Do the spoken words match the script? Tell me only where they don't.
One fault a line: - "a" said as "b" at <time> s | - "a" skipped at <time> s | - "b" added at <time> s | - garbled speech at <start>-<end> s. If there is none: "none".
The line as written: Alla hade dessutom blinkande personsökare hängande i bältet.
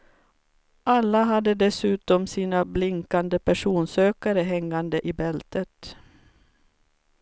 - "sina" added at 2.3 s